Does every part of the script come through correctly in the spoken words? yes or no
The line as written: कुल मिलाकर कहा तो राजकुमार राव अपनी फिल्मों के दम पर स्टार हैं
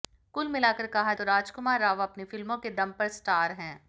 yes